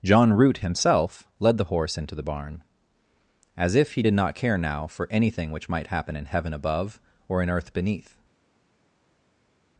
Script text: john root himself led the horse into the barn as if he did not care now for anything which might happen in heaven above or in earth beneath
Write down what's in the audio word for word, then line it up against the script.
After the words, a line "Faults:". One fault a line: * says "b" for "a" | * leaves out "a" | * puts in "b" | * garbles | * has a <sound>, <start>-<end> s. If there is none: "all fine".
john root himself led the horse into the barn as if he did not care now for anything which might happen in heaven above or in earth beneath
Faults:
all fine